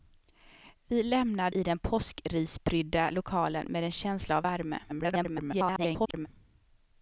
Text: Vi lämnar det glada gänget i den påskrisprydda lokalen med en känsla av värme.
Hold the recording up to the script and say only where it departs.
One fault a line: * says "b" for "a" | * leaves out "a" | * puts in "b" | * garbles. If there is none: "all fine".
* leaves out "det glada gänget"
* garbles